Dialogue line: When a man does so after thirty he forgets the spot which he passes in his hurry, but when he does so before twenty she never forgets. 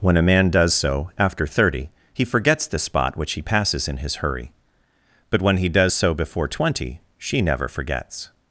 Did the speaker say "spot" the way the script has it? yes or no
yes